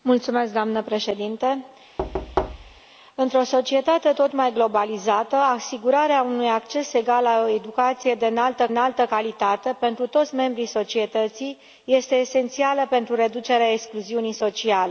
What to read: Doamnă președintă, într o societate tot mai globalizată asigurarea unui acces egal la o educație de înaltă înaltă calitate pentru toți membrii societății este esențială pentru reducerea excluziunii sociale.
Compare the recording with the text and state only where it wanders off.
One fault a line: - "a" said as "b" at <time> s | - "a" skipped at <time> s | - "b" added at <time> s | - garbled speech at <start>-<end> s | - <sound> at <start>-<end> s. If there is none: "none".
- thud at 2.0-2.8 s